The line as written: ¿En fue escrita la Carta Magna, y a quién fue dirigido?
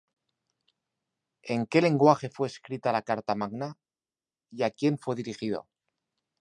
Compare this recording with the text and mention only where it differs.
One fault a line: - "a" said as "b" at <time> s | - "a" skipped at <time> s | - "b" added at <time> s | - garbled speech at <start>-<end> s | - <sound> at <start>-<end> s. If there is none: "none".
- "qué lenguaje" added at 1.7 s